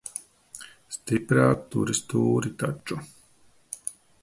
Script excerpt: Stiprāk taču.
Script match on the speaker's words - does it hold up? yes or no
no